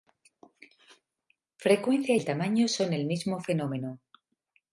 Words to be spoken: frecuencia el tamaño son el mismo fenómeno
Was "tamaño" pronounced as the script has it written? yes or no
yes